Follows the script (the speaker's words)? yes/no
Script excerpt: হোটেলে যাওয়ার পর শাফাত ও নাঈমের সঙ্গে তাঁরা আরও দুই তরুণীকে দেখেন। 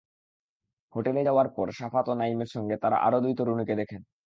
yes